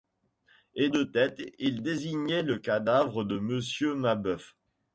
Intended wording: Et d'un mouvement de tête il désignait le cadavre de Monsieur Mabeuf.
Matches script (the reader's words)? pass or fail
fail